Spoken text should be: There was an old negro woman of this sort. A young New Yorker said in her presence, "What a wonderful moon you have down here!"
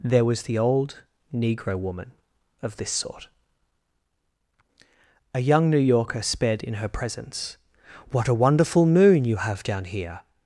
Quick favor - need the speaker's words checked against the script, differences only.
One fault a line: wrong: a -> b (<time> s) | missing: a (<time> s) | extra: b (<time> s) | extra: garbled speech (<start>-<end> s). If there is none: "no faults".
wrong: an -> the (0.4 s)
wrong: said -> sped (6.2 s)